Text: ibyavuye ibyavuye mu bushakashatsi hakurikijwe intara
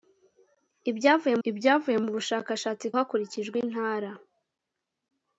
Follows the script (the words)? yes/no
yes